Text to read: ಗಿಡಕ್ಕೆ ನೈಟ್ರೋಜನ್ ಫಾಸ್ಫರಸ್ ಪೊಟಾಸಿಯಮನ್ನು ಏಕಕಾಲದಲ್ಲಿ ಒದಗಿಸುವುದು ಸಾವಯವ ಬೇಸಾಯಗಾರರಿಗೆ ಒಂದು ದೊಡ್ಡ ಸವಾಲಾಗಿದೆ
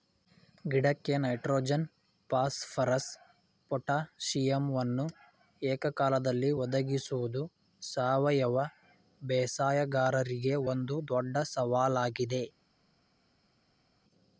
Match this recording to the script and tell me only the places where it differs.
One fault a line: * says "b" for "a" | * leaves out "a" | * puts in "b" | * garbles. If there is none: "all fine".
all fine